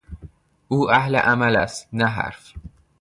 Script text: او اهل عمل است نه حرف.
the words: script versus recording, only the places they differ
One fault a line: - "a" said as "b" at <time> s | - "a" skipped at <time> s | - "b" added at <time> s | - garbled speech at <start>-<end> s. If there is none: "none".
none